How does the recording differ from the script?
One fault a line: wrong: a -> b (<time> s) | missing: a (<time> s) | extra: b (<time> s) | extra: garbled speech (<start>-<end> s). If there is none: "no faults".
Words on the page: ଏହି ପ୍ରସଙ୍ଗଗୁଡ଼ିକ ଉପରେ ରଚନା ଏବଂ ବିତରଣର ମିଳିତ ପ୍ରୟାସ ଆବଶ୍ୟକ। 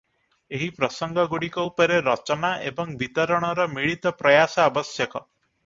no faults